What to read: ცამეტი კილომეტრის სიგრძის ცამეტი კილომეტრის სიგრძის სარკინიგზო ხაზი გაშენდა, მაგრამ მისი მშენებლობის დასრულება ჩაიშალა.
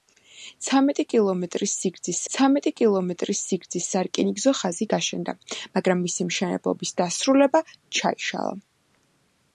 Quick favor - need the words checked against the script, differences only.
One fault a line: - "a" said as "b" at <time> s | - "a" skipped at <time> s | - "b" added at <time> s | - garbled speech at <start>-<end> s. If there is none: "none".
none